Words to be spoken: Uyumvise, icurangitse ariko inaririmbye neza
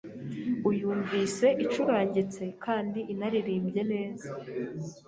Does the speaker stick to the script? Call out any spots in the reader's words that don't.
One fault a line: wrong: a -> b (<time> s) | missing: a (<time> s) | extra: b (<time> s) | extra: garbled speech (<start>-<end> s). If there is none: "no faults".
wrong: ariko -> kandi (2.6 s)